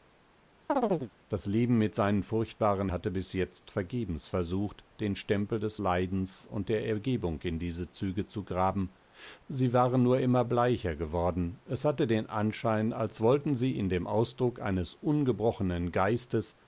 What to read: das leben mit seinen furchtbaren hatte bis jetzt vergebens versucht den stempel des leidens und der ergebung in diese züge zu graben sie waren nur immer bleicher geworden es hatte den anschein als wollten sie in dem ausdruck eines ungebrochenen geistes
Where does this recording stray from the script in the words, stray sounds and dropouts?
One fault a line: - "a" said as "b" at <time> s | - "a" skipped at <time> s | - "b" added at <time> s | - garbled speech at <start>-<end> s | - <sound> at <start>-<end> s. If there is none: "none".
- chirp at 0.7-1.1 s